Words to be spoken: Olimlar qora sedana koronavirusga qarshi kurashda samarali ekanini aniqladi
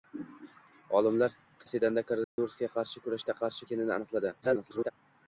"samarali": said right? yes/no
no